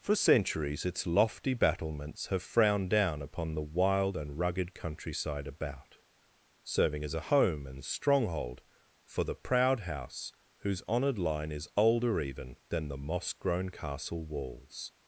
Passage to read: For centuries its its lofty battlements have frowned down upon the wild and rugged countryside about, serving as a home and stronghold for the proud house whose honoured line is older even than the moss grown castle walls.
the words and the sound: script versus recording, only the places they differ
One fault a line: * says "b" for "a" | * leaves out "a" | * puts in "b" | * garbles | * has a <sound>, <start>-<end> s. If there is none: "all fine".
* leaves out "its"